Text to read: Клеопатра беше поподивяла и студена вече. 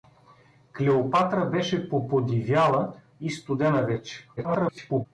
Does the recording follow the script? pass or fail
fail